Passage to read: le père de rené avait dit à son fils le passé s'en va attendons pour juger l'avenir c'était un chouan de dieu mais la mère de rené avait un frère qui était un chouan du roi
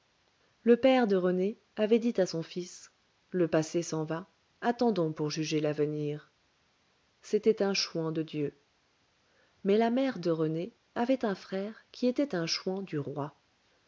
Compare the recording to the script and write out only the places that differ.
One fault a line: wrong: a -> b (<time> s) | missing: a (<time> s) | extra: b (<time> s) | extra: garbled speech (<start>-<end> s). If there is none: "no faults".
no faults